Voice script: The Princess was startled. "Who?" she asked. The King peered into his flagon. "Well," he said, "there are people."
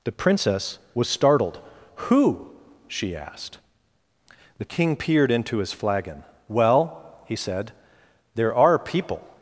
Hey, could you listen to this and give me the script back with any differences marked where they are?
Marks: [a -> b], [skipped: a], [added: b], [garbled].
The Princess was startled. "Who?" she asked. The King peered into his flagon. "Well," he said, "there are people."